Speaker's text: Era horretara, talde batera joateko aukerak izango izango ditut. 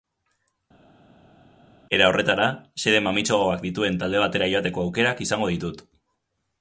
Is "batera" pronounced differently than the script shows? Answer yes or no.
no